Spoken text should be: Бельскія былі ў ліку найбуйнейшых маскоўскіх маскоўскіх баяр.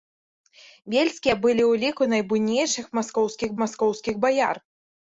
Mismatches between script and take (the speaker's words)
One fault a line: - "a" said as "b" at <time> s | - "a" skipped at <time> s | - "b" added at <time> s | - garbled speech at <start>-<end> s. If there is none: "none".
none